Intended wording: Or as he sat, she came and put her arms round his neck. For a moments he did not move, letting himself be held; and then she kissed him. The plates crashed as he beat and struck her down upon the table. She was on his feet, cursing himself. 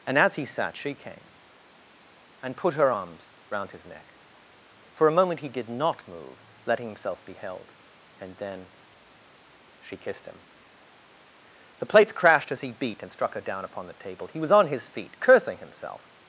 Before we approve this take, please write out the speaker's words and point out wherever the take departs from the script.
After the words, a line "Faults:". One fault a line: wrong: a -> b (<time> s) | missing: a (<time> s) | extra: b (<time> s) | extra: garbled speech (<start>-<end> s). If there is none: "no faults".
And as he sat, she came and put her arms round his neck. For a moment he did not move, letting himself be held; and then she kissed him. The plates crashed as he beat and struck her down upon the table. He was on his feet, cursing himself.
Faults:
wrong: Or -> And (0.1 s)
wrong: moments -> moment (5.1 s)
wrong: She -> He (14.3 s)